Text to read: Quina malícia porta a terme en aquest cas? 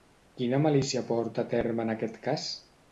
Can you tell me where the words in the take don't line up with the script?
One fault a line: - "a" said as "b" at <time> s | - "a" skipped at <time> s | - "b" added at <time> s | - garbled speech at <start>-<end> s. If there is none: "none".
none